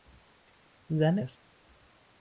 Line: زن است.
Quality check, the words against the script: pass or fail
pass